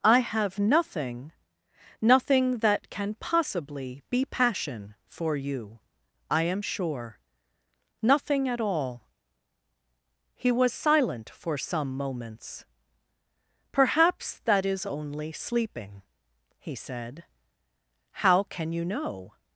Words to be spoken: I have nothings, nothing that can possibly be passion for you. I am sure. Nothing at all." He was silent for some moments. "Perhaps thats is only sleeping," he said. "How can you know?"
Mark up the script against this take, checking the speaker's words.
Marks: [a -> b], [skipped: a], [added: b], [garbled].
I have [nothings, -> nothing] nothing that can possibly be passion for you. I am sure. Nothing at all." He was silent for some moments. "Perhaps [thats -> that] is only sleeping," he said. "How can you know?"